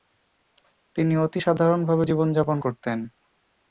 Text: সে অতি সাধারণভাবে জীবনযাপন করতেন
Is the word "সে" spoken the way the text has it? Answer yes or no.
no